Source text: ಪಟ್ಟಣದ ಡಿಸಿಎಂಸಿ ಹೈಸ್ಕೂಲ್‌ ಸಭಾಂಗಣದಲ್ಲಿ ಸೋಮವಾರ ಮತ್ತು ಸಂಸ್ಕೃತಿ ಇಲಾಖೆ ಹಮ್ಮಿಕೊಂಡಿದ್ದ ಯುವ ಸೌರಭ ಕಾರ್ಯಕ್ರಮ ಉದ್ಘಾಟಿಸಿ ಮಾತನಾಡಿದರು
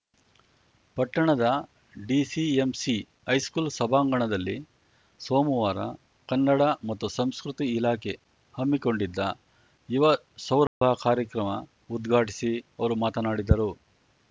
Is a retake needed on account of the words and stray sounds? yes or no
yes